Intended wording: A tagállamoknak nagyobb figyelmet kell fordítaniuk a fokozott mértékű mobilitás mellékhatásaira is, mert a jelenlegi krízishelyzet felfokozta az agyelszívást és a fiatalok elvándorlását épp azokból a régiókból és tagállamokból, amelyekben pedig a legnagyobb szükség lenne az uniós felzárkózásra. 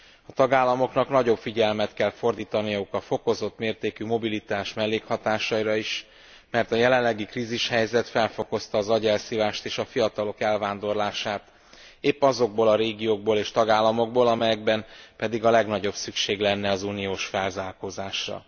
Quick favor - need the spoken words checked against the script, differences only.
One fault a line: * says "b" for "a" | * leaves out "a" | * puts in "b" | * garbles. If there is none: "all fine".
all fine